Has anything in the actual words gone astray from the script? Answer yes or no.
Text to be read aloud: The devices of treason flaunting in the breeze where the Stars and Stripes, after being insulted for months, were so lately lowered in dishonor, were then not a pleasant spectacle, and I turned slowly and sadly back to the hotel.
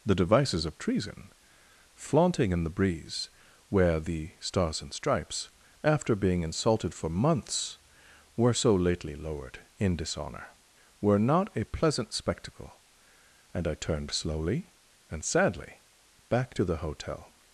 yes